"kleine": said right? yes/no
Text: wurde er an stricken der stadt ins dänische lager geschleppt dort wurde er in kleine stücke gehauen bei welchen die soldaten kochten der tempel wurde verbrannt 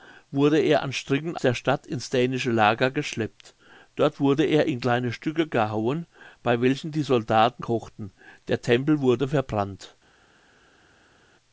yes